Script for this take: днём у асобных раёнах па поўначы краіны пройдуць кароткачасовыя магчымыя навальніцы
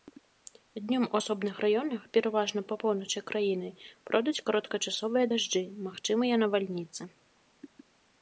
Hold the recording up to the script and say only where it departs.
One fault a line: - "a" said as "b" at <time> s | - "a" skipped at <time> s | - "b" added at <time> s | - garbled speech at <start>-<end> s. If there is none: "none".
- "пераважна" added at 2.2 s
- "дажджы" added at 5.3 s